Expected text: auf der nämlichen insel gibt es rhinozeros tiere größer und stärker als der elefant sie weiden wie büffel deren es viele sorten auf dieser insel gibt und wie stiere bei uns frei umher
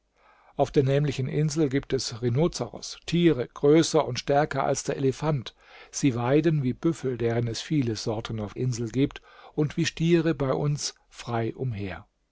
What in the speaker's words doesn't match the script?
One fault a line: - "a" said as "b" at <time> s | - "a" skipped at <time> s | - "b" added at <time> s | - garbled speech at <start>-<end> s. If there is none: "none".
- "dieser" skipped at 8.5 s